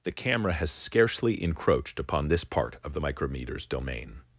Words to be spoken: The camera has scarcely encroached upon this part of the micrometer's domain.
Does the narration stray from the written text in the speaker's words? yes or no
no